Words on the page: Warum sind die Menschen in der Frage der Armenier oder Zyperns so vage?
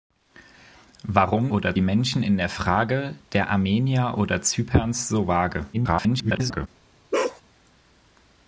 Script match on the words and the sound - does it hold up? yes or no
no